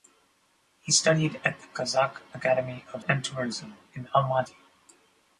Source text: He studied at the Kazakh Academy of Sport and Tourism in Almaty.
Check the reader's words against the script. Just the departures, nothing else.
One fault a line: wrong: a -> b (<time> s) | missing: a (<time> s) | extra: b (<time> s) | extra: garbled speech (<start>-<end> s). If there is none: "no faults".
missing: Sport (3.0 s)